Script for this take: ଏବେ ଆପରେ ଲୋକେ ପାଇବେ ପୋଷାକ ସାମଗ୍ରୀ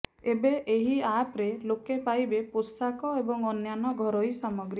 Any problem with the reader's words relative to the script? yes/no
yes